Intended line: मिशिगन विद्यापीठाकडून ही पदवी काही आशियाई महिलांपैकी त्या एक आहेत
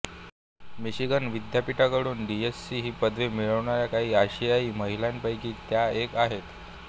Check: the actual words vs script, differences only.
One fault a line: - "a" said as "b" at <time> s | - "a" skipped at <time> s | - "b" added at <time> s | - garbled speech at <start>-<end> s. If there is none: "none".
- "डीएससी" added at 2.3 s
- "मिळवणाऱ्या" added at 3.3 s